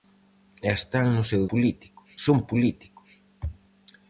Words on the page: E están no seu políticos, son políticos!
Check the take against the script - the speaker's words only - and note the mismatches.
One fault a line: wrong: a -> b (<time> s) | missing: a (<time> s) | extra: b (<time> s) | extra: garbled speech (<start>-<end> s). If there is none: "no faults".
no faults